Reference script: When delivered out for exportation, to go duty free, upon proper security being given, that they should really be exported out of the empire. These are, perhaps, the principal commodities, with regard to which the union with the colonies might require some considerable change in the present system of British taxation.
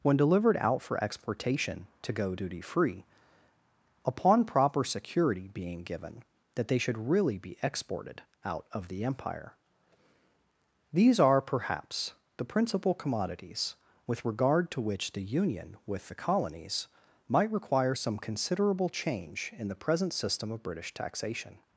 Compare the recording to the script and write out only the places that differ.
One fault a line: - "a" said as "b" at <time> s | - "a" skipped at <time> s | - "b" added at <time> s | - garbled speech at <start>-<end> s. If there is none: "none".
none